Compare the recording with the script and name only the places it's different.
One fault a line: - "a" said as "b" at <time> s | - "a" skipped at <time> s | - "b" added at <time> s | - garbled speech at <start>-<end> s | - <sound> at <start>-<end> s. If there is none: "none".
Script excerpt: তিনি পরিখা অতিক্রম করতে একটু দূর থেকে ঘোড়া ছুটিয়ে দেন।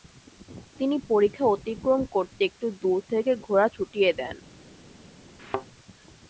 - thud at 5.4-5.7 s